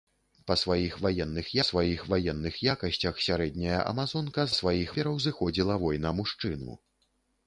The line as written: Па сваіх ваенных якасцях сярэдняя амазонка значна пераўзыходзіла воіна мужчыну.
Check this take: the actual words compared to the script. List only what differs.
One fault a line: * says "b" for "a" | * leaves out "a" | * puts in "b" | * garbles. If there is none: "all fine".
* puts in "сваіх ваенных"
* says "сваіх" for "значна"